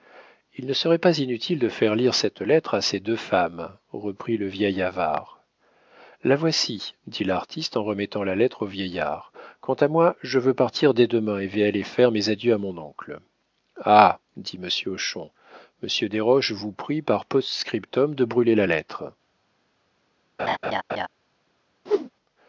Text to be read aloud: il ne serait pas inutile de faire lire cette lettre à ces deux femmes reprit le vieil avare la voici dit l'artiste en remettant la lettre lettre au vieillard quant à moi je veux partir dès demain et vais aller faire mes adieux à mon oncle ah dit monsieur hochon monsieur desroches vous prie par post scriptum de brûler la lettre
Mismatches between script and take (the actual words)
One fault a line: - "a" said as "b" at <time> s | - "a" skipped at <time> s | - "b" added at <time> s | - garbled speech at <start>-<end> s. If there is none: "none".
- "lettre" skipped at 8.6 s